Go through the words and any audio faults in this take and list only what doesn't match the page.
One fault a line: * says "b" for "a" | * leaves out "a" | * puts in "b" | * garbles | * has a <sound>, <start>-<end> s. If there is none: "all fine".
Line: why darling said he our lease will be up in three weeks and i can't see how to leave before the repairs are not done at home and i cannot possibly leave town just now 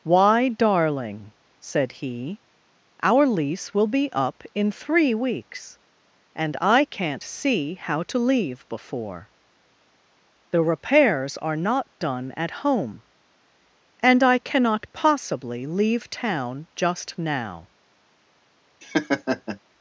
* has a laugh, 18.8-19.6 s